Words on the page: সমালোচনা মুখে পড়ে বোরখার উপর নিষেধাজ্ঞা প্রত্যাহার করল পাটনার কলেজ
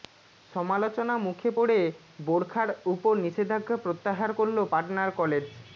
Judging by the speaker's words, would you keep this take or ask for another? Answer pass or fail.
pass